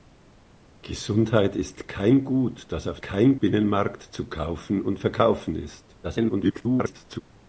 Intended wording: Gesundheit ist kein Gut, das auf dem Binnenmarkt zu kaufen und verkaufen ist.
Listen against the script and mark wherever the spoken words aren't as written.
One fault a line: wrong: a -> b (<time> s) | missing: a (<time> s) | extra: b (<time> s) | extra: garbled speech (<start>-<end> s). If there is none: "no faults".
wrong: dem -> kein (3.0 s)
extra: garbled speech (6.0-7.2 s)